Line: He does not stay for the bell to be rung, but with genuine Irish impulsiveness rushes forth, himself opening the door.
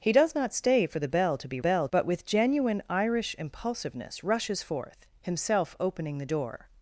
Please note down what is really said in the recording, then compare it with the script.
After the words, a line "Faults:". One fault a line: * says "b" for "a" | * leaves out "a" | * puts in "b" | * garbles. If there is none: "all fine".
He does not stay for the bell to be bell, but with genuine Irish impulsiveness rushes forth, himself opening the door.
Faults:
* says "bell" for "rung"